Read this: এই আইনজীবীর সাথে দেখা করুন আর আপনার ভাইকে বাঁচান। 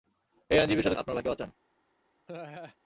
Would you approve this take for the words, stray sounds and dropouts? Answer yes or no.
no